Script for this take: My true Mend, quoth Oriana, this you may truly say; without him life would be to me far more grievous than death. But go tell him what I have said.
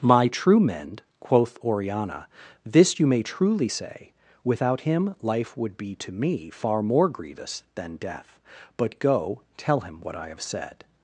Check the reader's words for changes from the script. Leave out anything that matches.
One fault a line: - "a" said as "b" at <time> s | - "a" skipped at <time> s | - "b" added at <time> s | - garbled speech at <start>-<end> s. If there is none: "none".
none